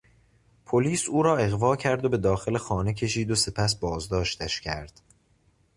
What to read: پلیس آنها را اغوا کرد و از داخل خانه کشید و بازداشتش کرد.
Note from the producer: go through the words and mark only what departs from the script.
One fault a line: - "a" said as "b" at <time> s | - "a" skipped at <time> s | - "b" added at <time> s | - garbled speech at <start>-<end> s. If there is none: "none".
- "آنها" said as "او" at 1.1 s
- "از" said as "به" at 2.1 s
- "سپس" added at 3.4 s